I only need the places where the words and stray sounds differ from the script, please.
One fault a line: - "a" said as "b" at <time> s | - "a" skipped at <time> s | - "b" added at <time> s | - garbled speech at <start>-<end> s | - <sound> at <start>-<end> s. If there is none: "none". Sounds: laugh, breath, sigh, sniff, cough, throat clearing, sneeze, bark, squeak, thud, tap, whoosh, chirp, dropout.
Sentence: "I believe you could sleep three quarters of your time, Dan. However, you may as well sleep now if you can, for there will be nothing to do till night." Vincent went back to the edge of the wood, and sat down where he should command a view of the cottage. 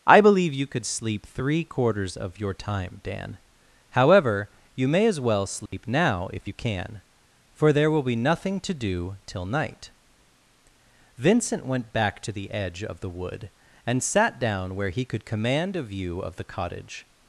- dropout at 5.7-5.7 s
- "should" said as "could" at 15.0 s